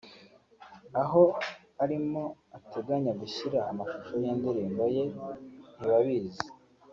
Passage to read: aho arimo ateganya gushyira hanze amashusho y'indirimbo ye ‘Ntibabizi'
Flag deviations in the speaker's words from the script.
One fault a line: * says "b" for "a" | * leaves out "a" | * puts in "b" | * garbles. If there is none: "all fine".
* leaves out "hanze"